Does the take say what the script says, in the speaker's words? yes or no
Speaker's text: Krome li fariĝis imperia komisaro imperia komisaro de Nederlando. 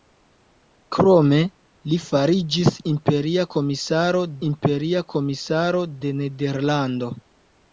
yes